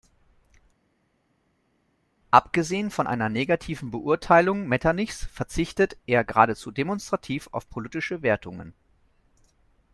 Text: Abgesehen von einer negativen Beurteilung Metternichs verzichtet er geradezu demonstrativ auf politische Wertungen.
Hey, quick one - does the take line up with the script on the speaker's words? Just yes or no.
yes